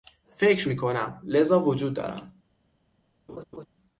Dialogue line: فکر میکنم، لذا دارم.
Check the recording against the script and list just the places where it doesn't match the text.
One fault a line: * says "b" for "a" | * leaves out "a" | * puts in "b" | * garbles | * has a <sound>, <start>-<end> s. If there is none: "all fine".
* puts in "وجود"
* has a laugh, 3.3-3.7 s